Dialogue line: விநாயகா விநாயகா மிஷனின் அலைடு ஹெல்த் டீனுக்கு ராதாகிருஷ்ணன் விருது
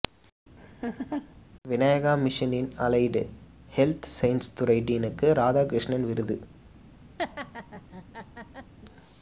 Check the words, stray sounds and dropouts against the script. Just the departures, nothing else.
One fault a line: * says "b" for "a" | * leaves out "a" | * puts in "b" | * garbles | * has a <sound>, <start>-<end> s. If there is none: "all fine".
* has a laugh, 0.6-1.4 s
* leaves out "விநாயகா"
* puts in "சயின்ஸ் துறை"
* has a laugh, 7.2-8.7 s